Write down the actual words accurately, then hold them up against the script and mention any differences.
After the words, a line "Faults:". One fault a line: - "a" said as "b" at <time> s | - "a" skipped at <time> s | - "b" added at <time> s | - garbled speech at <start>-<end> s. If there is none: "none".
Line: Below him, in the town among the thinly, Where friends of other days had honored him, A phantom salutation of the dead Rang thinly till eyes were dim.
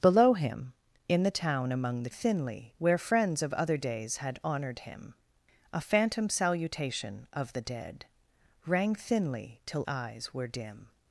Below him, in the town among the thinly, Where friends of other days had honored him, A phantom salutation of the dead Rang thinly till eyes were dim.
Faults:
none